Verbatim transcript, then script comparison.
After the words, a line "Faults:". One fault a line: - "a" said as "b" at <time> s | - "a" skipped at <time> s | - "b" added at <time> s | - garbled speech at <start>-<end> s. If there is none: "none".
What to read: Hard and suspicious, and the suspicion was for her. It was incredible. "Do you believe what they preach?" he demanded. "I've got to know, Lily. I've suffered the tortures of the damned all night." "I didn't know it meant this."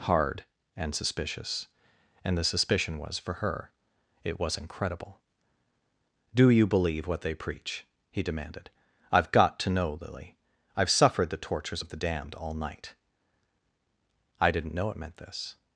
Hard and suspicious, and the suspicion was for her. It was incredible. "Do you believe what they preach?" he demanded. "I've got to know, Lily. I've suffered the tortures of the damned all night." "I didn't know it meant this."
Faults:
none